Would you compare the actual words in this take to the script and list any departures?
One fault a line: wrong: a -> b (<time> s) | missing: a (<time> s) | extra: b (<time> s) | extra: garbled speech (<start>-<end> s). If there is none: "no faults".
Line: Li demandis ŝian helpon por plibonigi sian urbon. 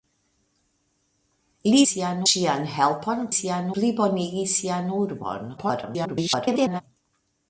wrong: demandis -> sian (1.9 s)
wrong: por -> sian (3.4 s)
extra: garbled speech (5.6-6.8 s)